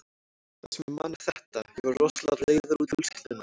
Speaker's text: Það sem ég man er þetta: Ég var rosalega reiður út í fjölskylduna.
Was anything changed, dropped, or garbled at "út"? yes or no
yes